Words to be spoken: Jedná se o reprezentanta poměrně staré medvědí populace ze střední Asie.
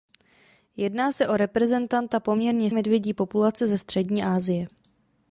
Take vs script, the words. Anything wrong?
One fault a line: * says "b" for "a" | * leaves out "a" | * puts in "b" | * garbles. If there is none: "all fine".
* leaves out "staré"